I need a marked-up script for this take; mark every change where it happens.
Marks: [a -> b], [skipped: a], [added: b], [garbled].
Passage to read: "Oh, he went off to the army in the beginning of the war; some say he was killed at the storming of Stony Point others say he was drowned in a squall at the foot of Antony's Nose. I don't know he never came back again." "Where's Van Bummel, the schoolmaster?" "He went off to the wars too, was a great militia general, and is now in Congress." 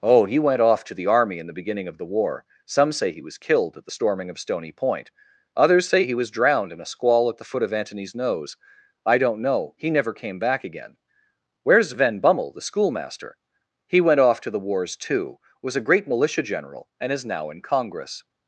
"Oh, he went off to the army in the beginning of the war; some say he was killed at the storming of Stony Point others say he was drowned in a squall at the foot of Antony's Nose. I don't know he never came back again." "Where's Van Bummel, the schoolmaster?" "He went off to the wars too, was a great militia general, and is now in Congress."